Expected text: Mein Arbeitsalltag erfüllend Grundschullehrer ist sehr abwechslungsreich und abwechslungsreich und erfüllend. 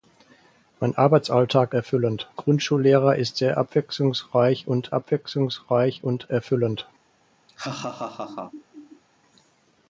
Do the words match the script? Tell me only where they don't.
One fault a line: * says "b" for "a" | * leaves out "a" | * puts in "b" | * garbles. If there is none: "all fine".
all fine